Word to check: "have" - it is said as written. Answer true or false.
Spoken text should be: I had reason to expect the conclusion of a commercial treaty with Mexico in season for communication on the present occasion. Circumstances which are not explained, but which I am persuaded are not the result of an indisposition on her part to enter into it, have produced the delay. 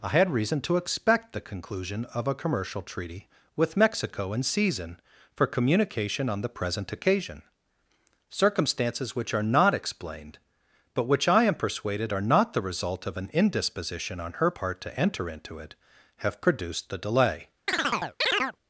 true